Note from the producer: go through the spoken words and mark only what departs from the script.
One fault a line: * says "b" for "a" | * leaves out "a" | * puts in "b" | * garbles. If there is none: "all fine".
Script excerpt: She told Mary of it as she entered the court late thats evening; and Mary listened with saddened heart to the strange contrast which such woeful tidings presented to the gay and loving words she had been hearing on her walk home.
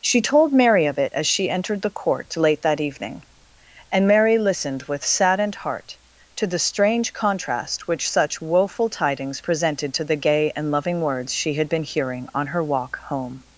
* says "that" for "thats"